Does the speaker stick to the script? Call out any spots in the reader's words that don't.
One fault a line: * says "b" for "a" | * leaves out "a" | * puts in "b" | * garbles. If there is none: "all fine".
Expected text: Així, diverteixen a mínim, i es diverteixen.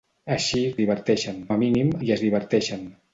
all fine